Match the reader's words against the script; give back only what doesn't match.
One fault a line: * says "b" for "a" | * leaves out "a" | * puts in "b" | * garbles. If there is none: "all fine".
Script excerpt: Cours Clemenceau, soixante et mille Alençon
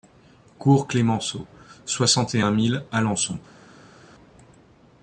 * puts in "un"